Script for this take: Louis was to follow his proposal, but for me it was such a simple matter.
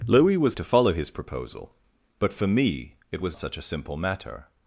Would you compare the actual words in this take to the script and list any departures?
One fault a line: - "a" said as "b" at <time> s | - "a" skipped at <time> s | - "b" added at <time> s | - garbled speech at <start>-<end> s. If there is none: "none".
none